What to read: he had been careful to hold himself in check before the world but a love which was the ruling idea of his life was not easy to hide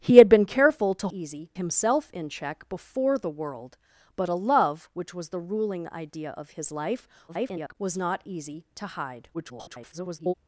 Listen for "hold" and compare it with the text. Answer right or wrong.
wrong